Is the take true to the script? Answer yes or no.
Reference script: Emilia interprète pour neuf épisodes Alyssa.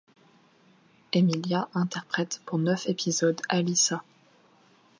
yes